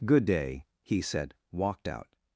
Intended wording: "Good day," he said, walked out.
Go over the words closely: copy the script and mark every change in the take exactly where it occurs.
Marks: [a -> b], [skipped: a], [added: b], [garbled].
"Good day," he said, walked out.